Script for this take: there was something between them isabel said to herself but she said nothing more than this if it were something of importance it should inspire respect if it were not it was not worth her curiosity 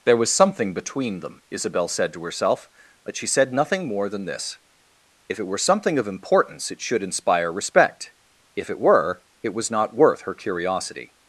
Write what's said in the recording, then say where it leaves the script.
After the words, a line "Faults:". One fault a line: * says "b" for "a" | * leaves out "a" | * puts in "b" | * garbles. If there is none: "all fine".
there was something between them isabel said to herself but she said nothing more than this if it were something of importance it should inspire respect if it were it was not worth her curiosity
Faults:
* leaves out "not"